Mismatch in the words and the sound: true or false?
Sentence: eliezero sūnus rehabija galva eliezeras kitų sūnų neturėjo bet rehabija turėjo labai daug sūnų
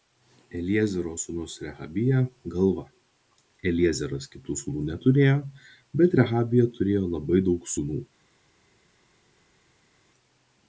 false